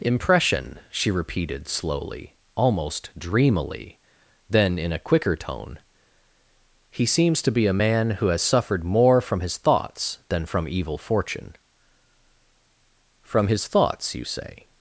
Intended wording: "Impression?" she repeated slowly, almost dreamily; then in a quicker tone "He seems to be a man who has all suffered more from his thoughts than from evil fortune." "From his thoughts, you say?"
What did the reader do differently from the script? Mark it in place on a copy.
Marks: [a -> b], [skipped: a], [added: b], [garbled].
"Impression?" she repeated slowly, almost dreamily; then in a quicker tone "He seems to be a man who has [skipped: all] suffered more from his thoughts than from evil fortune." "From his thoughts, you say?"